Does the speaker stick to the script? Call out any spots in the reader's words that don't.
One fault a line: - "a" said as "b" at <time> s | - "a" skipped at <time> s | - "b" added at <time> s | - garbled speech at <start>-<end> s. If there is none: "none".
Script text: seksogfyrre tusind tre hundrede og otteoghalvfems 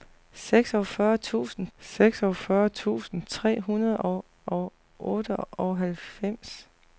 - "seksogfyrre tusind" added at 1.8 s
- "og" added at 4.4 s